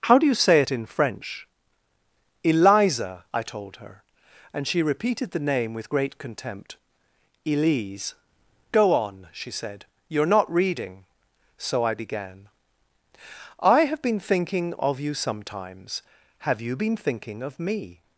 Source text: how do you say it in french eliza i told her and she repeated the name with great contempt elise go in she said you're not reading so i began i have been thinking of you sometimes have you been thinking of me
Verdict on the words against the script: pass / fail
fail